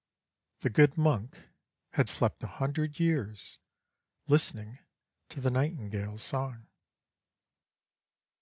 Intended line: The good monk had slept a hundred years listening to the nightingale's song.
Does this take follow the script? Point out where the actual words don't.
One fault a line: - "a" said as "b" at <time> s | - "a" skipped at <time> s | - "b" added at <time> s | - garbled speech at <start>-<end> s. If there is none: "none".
none